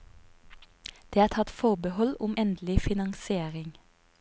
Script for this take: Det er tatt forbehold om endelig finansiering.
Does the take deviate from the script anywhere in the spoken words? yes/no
no